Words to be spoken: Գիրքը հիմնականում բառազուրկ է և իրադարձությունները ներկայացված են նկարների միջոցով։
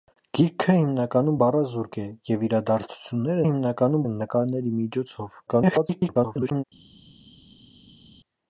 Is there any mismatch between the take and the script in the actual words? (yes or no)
yes